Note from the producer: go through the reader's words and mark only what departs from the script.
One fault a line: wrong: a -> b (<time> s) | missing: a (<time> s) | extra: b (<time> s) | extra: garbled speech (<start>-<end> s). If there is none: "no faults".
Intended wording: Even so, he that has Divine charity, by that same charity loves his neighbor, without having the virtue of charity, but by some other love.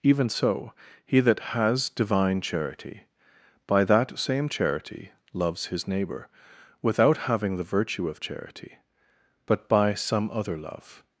no faults